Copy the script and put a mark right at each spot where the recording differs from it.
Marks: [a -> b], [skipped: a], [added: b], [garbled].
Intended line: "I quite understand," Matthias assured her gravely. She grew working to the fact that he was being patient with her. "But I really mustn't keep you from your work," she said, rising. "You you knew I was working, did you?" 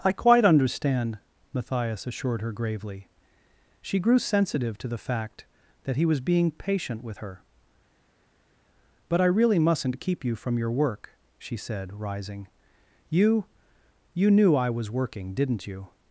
"I quite understand," Matthias assured her gravely. She grew [working -> sensitive] to the fact that he was being patient with her. "But I really mustn't keep you from your work," she said, rising. "You you knew I was working, [did -> didn't] you?"